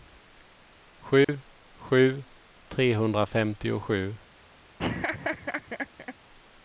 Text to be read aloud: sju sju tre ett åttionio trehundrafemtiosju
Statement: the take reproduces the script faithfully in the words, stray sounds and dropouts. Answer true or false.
false